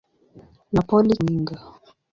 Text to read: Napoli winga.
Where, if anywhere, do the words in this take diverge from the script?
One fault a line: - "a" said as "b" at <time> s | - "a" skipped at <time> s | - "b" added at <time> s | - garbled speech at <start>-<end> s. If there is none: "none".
none